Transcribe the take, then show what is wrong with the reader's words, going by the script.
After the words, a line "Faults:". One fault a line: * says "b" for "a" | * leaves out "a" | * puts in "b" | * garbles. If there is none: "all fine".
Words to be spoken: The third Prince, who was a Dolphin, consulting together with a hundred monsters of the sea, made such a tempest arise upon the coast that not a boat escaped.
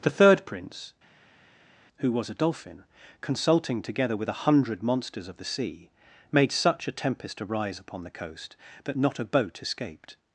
The third Prince, who was a Dolphin, consulting together with a hundred monsters of the sea, made such a tempest arise upon the coast that not a boat escaped.
Faults:
all fine